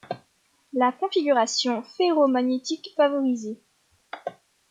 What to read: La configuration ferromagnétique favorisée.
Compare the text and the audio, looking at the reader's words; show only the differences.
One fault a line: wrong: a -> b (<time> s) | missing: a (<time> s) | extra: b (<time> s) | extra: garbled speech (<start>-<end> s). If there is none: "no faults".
no faults